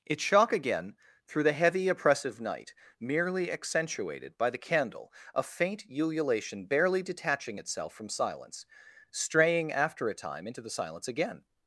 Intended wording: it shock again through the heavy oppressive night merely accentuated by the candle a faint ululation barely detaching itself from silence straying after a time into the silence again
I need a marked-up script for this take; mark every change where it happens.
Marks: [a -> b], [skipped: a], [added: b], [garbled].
it shock again through the heavy oppressive night merely accentuated by the candle a faint ululation barely detaching itself from silence straying after a time into the silence again